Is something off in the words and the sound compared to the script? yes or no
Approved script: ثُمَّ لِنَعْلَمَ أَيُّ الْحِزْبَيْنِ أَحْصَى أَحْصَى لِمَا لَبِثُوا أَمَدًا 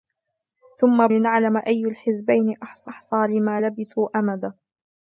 no